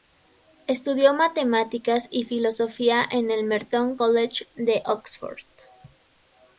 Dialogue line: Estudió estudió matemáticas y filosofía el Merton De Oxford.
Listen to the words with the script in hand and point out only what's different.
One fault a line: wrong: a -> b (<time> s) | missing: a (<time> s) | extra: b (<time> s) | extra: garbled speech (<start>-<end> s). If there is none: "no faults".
missing: estudió (1.1 s)
extra: en (3.1 s)
extra: College (3.9 s)